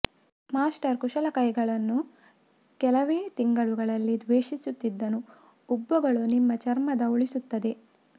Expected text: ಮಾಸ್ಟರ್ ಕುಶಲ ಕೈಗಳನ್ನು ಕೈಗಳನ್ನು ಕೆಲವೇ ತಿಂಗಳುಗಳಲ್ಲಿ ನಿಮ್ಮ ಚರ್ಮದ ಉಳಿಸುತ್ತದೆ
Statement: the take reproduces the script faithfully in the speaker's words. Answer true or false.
false